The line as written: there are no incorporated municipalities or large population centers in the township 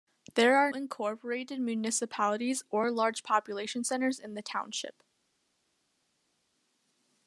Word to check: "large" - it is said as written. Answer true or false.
true